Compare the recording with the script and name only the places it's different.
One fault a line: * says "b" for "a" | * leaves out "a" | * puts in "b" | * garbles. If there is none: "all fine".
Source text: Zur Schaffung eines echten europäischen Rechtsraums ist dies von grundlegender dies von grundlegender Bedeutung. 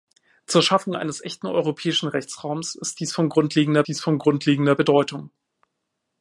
all fine